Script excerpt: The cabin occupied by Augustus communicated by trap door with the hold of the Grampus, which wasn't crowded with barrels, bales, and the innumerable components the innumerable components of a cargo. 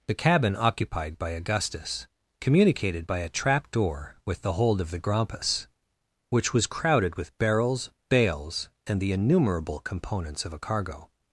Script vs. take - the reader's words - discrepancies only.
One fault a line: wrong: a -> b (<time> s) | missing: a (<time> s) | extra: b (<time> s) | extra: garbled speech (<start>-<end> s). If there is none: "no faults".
extra: a (3.2 s)
wrong: wasn't -> was (6.5 s)
missing: the innumerable components (10.4 s)